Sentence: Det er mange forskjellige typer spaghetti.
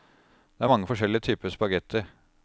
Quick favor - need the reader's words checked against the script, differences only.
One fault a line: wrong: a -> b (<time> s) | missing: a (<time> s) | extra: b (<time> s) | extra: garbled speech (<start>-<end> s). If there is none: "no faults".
no faults